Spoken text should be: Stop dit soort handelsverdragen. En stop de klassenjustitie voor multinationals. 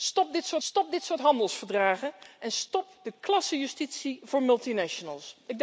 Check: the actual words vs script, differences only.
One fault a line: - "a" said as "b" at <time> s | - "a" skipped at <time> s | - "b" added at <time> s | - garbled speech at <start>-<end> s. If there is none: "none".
- "stop dit soort" added at 0.6 s